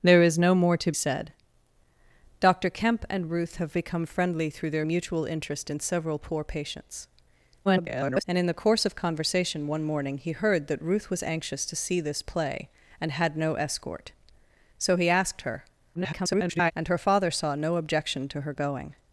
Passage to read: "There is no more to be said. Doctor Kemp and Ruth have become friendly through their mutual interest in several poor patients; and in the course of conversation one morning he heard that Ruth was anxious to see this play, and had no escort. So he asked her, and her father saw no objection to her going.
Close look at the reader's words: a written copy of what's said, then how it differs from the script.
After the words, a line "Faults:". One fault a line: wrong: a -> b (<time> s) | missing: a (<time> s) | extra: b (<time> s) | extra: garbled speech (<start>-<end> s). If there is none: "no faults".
"There is no more to said. Doctor Kemp and Ruth have become friendly through their mutual interest in several poor patients; [garbled] and in the course of conversation one morning he heard that Ruth was anxious to see this play, and had no escort. So he asked her, [garbled] and her father saw no objection to her going.
Faults:
missing: be (0.9 s)
extra: garbled speech (7.6-8.2 s)
extra: garbled speech (15.9-16.7 s)